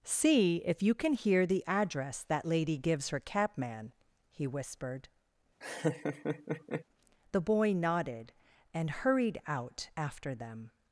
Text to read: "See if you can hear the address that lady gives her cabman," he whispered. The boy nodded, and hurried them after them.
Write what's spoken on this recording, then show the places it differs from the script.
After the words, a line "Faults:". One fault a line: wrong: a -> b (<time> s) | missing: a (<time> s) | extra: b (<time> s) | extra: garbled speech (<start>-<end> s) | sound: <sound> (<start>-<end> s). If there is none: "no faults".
"See if you can hear the address that lady gives her cabman," he whispered. The boy nodded, and hurried out after them.
Faults:
sound: laugh (5.6-6.8 s)
wrong: them -> out (9.5 s)